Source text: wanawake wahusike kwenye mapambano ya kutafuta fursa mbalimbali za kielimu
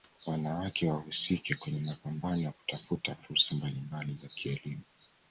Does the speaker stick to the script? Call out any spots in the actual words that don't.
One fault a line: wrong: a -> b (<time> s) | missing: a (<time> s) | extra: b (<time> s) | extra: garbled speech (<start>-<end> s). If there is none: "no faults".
no faults